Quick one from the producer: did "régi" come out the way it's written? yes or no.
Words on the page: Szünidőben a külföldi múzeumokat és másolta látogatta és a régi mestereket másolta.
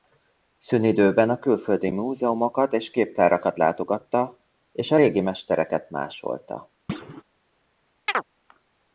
yes